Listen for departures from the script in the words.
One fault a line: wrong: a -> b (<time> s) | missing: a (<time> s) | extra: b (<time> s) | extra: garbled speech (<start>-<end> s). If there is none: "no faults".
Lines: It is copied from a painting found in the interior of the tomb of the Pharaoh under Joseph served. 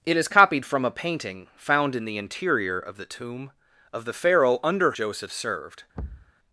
no faults